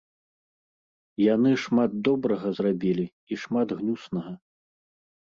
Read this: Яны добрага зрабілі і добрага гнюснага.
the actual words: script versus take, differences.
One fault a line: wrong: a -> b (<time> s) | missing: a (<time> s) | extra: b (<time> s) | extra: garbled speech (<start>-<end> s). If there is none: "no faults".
extra: шмат (1.6 s)
wrong: добрага -> шмат (3.5 s)